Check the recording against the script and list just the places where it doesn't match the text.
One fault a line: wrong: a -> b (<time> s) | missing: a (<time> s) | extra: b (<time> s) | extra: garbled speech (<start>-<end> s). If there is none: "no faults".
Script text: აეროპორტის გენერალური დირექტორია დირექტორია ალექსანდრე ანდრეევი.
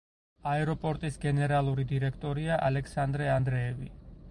missing: დირექტორია (2.6 s)